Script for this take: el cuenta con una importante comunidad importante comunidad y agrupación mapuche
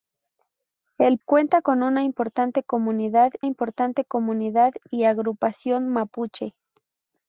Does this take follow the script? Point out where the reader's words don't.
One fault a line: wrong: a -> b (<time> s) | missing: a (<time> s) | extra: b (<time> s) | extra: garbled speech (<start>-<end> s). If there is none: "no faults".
no faults